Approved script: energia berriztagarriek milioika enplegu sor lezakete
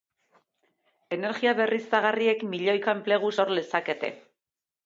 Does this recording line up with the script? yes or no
yes